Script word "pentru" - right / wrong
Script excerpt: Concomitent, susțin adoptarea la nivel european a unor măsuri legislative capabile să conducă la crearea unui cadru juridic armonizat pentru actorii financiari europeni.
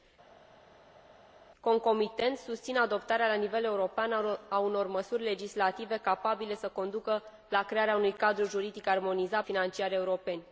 wrong